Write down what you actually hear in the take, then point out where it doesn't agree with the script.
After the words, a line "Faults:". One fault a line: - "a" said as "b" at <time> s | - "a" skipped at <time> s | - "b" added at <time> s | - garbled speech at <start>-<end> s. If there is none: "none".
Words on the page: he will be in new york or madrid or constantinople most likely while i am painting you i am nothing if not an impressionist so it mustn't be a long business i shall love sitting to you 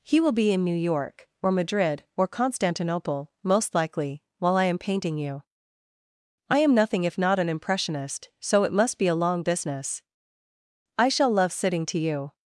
he will be in new york or madrid or constantinople most likely while i am painting you i am nothing if not an impressionist so it must be a long business i shall love sitting to you
Faults:
- "mustn't" said as "must" at 8.7 s